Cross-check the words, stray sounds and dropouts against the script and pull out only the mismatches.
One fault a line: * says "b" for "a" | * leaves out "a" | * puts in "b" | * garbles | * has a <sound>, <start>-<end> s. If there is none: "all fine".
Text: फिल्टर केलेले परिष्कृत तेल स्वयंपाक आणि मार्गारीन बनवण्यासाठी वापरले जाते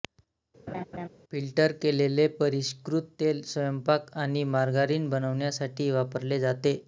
* has a laugh, 0.7-1.1 s